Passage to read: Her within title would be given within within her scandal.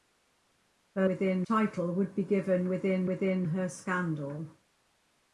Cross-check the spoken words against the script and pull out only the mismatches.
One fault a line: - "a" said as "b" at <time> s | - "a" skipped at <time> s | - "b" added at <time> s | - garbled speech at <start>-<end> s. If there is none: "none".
none